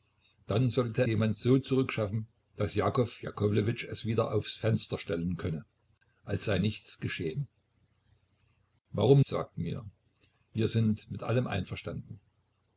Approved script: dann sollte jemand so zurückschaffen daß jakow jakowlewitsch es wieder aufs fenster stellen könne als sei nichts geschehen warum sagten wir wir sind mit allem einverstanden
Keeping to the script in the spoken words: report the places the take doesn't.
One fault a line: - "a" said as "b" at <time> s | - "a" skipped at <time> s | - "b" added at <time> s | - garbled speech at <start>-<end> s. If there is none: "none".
none